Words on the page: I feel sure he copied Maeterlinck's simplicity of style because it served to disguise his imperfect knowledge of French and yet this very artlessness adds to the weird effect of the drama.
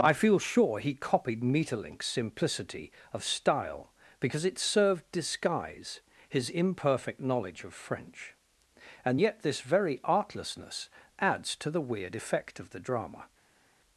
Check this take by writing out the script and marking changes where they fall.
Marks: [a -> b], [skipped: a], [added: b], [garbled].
I feel sure he copied Maeterlinck's simplicity of style because it served [skipped: to] disguise his imperfect knowledge of French and yet this very artlessness adds to the weird effect of the drama.